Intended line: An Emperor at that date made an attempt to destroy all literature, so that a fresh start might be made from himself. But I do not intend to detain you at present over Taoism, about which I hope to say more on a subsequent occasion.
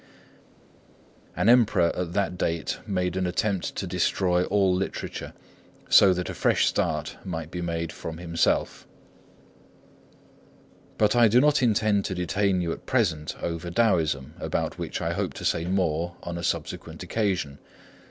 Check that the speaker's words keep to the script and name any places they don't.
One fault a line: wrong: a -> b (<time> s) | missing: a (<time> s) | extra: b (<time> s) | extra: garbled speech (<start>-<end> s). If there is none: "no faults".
no faults